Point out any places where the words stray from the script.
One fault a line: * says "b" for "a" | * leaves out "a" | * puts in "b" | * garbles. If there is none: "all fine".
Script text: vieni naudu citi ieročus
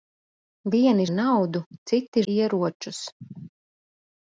all fine